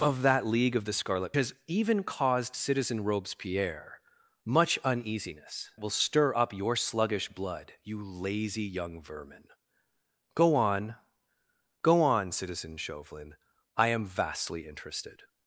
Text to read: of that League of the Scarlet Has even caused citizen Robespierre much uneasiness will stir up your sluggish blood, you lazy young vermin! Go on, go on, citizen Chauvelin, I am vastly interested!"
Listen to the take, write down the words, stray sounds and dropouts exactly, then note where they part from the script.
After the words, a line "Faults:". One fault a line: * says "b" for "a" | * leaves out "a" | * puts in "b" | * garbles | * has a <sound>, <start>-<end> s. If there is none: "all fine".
of that League of the Scarlet Has even caused citizen Robespierre much uneasiness will stir up your sluggish blood, you lazy young vermin! Go on, go on, citizen Chauvelin, I am vastly interested!"
Faults:
all fine